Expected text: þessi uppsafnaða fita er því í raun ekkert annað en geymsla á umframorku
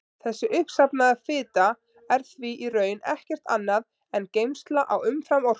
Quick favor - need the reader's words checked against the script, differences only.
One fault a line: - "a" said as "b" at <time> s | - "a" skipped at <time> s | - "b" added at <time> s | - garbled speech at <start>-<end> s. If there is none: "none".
none